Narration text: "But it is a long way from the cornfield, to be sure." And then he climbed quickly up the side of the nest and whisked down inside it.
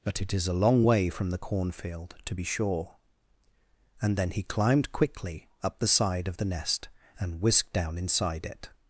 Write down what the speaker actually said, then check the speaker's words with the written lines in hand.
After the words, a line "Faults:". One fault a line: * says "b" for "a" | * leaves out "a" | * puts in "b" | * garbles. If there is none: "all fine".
"But it is a long way from the cornfield, to be sure." And then he climbed quickly up the side of the nest and whisked down inside it.
Faults:
all fine